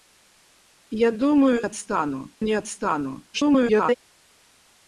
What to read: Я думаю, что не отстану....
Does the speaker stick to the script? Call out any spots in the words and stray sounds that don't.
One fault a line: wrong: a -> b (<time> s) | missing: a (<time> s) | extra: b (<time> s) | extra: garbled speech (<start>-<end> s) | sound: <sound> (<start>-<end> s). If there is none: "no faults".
wrong: что -> отстану (1.6 s)
extra: garbled speech (3.3-4.0 s)